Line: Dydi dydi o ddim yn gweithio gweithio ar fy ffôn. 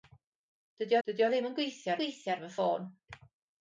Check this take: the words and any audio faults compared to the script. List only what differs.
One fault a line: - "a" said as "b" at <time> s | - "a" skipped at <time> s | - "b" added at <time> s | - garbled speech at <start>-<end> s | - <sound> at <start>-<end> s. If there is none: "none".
none